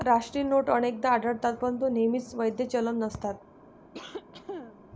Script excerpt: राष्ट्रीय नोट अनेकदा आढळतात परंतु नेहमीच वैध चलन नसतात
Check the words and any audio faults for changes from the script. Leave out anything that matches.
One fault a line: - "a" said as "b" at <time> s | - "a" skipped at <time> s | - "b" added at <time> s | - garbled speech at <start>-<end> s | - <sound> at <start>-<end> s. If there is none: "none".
- cough at 3.9-4.9 s